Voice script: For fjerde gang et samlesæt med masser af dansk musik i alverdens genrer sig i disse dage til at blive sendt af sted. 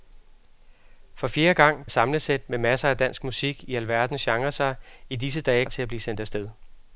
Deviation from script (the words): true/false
false